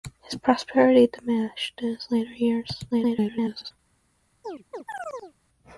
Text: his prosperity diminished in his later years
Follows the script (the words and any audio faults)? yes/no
no